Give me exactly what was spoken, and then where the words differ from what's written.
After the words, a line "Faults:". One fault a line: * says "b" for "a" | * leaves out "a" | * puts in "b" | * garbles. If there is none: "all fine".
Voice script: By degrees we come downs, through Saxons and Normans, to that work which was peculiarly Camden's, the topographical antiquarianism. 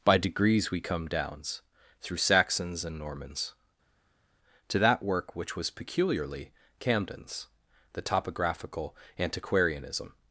By degrees we come downs, through Saxons and Normans, to that work which was peculiarly Camden's, the topographical antiquarianism.
Faults:
all fine